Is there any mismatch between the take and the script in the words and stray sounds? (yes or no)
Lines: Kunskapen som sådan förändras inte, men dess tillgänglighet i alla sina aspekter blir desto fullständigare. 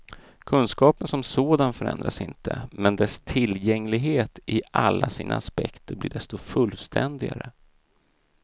no